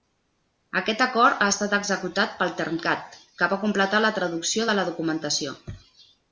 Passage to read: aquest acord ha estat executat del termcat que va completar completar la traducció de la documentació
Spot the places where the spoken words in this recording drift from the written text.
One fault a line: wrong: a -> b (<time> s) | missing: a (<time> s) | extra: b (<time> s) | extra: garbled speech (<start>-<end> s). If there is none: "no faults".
wrong: del -> pel (2.4 s)
missing: completar (4.0 s)